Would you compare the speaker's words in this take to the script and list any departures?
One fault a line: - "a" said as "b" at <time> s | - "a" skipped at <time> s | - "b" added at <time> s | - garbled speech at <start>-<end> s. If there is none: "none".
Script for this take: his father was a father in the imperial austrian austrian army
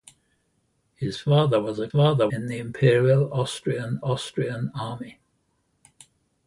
none